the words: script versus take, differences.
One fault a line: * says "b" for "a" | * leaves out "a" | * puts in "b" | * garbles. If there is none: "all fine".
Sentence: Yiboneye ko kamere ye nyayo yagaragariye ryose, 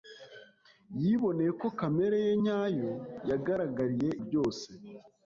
all fine